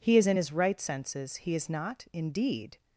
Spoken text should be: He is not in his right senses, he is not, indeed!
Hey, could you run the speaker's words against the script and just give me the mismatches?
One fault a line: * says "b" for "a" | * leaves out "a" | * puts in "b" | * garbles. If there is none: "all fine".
* leaves out "not"